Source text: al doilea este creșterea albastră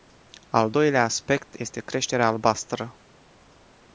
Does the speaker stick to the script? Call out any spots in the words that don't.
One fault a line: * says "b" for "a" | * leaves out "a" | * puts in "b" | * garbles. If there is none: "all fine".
* puts in "aspect"